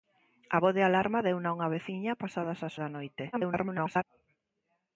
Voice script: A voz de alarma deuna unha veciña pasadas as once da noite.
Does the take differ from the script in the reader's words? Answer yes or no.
yes